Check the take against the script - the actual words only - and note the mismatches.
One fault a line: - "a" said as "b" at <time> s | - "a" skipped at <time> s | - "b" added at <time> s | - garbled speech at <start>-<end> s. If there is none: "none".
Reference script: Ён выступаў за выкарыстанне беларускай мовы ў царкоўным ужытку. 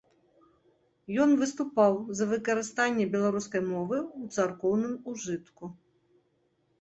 none